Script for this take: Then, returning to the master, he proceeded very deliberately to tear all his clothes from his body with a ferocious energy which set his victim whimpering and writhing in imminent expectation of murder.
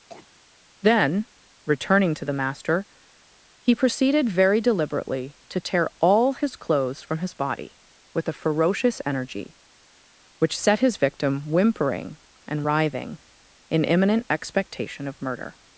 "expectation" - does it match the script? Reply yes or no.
yes